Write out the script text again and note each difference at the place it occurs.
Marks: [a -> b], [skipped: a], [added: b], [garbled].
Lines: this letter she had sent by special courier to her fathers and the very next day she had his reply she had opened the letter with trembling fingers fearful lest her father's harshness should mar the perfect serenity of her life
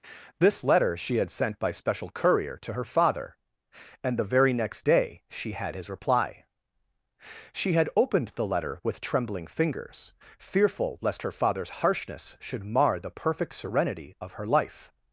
this letter she had sent by special courier to her [fathers -> father] and the very next day she had his reply she had opened the letter with trembling fingers fearful lest her father's harshness should mar the perfect serenity of her life